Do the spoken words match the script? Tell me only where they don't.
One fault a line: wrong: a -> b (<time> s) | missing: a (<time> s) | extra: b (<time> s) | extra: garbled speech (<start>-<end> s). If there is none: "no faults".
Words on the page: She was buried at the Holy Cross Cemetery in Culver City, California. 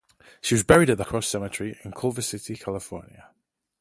missing: Holy (1.0 s)